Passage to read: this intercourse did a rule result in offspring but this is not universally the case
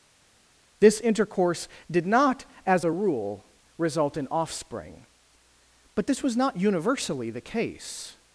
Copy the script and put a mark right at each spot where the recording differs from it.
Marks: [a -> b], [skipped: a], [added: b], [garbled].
this intercourse did [added: not as] a rule result in offspring but this [is -> was] not universally the case